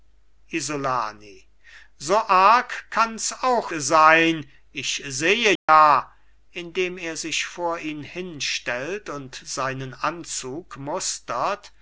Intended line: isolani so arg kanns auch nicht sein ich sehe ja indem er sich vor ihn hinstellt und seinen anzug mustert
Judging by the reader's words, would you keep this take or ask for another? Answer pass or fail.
fail